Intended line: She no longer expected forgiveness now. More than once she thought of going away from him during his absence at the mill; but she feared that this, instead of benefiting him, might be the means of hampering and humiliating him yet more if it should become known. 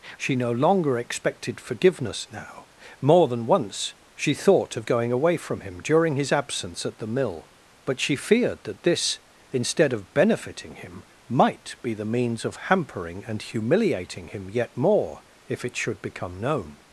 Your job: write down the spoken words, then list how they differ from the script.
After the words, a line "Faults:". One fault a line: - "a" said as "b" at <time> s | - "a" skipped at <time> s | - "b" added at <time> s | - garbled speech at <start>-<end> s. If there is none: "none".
She no longer expected forgiveness now. More than once she thought of going away from him during his absence at the mill; but she feared that this, instead of benefiting him, might be the means of hampering and humiliating him yet more if it should become known.
Faults:
none